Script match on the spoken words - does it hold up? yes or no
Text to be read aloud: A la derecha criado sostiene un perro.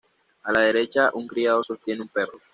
no